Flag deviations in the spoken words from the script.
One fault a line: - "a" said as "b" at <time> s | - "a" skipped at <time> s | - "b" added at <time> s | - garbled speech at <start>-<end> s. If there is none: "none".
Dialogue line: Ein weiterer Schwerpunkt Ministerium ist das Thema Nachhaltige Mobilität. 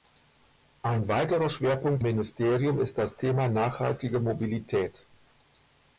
none